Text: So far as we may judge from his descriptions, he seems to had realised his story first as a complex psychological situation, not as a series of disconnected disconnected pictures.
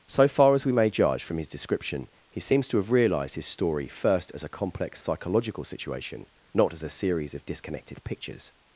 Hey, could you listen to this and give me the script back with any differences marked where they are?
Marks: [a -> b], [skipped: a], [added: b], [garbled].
So far as we may judge from his [descriptions, -> description] he seems to [had -> have] realised his story first as a complex psychological situation, not as a series of disconnected [skipped: disconnected] pictures.